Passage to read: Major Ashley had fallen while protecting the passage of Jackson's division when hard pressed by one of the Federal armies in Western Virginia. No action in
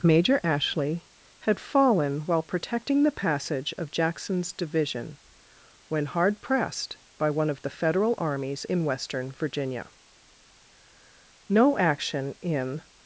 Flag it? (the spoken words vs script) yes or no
no